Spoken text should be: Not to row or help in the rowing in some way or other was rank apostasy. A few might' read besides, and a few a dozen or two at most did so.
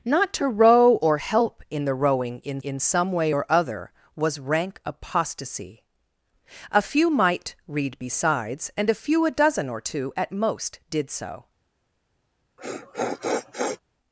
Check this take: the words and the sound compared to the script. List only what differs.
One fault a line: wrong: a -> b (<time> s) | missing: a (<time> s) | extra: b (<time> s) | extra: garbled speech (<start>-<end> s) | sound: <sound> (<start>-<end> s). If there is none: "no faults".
extra: in (2.6 s)
sound: sniff (12.6-13.8 s)